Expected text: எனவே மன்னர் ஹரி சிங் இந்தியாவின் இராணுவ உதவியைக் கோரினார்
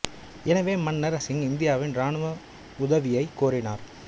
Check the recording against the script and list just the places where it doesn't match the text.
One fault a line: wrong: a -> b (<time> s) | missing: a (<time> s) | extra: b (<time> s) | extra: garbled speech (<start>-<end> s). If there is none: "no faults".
missing: ஹரி (1.2 s)